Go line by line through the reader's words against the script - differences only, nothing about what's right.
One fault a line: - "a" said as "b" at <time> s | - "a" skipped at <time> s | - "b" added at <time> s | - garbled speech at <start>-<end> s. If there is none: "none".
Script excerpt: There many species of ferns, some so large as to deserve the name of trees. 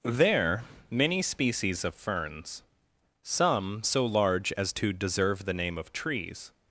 none